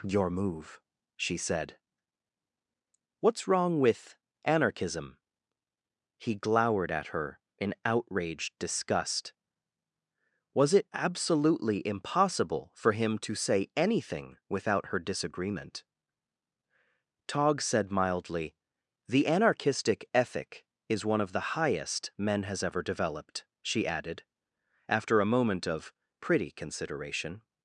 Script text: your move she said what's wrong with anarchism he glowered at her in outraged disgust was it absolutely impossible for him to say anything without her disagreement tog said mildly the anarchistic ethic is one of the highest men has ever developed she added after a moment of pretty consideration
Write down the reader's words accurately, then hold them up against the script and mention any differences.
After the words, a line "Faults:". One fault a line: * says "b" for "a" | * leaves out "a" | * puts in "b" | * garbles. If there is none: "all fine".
your move she said what's wrong with anarchism he glowered at her in outraged disgust was it absolutely impossible for him to say anything without her disagreement tog said mildly the anarchistic ethic is one of the highest men has ever developed she added after a moment of pretty consideration
Faults:
all fine